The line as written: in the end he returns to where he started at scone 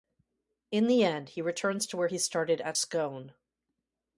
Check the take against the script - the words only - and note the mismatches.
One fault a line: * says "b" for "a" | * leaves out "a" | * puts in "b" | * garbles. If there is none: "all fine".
all fine